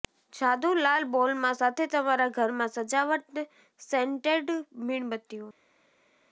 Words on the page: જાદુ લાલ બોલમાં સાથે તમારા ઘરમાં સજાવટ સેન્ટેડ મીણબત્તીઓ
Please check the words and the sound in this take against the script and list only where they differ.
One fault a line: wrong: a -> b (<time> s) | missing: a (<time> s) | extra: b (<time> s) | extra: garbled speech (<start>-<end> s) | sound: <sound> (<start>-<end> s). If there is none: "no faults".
no faults